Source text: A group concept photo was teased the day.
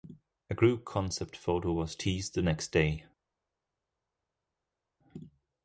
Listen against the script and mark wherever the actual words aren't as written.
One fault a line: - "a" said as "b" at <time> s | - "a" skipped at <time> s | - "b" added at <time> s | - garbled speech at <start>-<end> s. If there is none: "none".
- "next" added at 2.4 s